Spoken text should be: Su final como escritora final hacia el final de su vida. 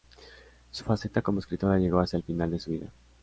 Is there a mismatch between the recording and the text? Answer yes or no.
yes